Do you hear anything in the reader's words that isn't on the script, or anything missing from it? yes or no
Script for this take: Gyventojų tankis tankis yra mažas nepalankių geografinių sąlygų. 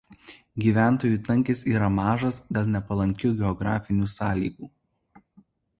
yes